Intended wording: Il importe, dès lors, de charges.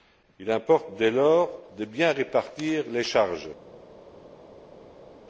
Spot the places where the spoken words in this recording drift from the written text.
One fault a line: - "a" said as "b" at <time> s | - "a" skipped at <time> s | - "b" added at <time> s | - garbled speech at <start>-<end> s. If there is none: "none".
- "bien répartir les" added at 1.9 s